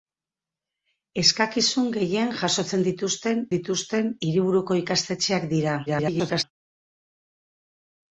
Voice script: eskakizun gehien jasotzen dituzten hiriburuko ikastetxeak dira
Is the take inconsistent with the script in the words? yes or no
yes